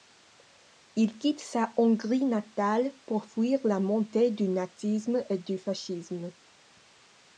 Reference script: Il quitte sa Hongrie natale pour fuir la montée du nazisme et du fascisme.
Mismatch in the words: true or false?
false